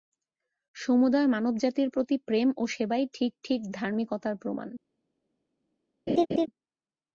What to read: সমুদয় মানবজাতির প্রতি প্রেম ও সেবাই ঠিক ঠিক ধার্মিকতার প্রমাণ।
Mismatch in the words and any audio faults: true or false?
true